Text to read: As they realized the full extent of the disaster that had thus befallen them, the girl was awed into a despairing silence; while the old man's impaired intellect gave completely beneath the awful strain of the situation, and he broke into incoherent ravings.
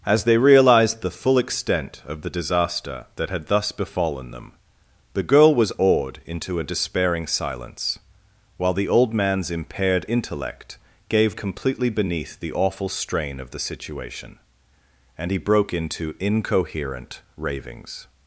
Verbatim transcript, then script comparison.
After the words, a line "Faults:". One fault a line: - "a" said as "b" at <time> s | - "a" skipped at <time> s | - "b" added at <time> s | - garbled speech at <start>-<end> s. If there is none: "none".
As they realized the full extent of the disaster that had thus befallen them, the girl was awed into a despairing silence; while the old man's impaired intellect gave completely beneath the awful strain of the situation, and he broke into incoherent ravings.
Faults:
none